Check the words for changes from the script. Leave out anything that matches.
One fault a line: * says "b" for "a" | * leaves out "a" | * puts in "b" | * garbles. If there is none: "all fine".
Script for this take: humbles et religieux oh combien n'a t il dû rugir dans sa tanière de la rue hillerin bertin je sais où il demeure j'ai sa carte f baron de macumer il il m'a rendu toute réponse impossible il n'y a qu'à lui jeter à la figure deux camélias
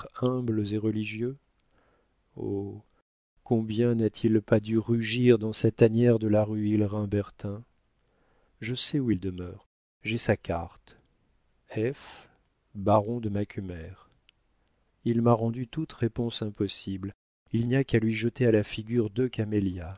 * puts in "pas"
* leaves out "il"